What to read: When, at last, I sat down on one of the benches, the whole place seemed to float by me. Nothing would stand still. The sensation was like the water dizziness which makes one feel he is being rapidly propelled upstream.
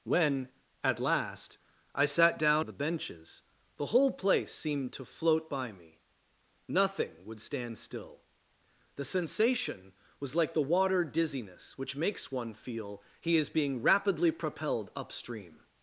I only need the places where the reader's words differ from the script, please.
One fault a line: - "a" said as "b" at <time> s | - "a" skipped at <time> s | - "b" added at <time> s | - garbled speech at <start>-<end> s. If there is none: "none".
- "on one" skipped at 2.6 s